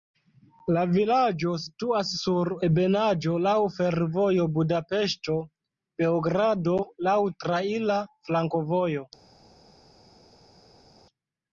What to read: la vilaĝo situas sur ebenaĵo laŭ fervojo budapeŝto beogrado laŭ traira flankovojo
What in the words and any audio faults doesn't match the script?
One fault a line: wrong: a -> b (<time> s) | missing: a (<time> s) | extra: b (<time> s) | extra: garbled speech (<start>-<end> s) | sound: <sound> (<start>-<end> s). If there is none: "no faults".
no faults